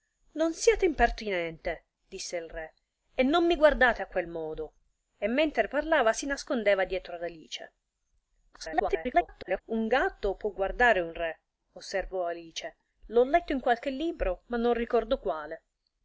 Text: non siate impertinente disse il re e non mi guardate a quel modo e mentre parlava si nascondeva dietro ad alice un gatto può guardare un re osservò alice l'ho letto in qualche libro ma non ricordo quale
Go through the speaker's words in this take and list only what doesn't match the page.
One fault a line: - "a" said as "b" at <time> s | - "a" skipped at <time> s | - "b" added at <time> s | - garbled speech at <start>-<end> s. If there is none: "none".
- garbled speech at 8.5-9.6 s